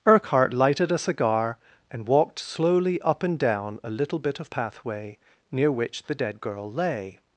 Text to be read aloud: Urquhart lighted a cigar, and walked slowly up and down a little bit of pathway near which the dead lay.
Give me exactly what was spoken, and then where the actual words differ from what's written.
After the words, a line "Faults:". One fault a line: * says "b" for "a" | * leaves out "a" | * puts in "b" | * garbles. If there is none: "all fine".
Urquhart lighted a cigar, and walked slowly up and down a little bit of pathway near which the dead girl lay.
Faults:
* puts in "girl"